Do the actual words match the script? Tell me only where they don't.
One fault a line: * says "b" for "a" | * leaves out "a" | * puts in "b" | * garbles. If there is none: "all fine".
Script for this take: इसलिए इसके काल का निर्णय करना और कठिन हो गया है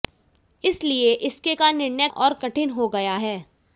* leaves out "काल"
* leaves out "करना"